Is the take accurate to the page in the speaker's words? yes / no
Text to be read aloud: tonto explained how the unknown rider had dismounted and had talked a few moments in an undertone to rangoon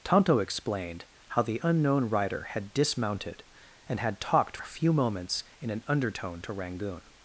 yes